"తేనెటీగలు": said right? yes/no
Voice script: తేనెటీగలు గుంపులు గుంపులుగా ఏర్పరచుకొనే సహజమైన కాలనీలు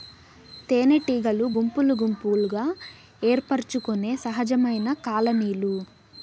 yes